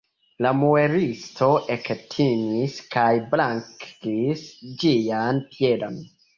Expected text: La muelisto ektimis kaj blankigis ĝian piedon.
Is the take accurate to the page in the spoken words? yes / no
yes